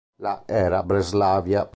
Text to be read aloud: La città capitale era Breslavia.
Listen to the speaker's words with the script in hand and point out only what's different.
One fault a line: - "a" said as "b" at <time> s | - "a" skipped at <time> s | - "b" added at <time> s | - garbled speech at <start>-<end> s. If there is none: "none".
- "città capitale" skipped at 0.5 s